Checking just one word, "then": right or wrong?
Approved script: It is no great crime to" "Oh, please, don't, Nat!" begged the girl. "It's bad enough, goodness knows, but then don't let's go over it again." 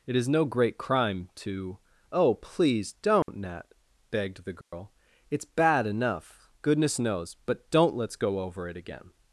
wrong